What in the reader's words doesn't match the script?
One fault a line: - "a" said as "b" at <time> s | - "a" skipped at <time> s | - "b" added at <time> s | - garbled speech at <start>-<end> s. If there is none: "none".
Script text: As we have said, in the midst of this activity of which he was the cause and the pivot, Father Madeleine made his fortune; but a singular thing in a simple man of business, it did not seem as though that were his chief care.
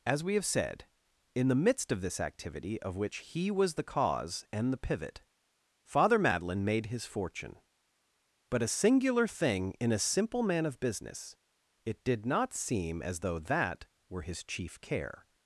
none